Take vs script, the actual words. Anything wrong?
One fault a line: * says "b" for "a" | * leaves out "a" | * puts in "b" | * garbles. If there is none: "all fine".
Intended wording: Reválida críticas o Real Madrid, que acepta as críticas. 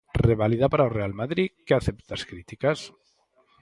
* says "para" for "críticas"